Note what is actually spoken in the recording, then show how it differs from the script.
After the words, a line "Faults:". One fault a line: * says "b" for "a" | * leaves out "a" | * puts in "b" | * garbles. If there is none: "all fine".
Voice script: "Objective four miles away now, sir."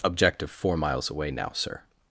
"Objective four miles away now, sir."
Faults:
all fine